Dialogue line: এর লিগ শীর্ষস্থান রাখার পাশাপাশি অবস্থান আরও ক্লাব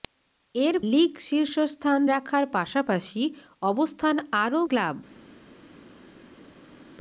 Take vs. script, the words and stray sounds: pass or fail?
pass